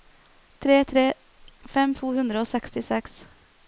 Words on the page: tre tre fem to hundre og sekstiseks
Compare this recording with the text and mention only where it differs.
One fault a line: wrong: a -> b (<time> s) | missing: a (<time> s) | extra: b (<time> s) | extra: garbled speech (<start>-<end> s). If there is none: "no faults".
no faults